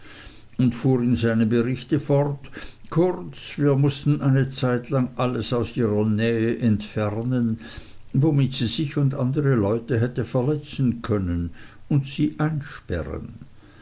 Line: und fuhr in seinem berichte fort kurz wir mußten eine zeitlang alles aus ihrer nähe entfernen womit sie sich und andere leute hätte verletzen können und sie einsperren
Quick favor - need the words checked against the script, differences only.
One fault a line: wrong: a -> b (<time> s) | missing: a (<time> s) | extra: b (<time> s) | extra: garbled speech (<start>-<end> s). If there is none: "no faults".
no faults